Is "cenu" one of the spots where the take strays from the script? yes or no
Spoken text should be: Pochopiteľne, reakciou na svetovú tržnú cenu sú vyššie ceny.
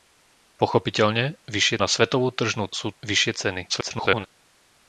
yes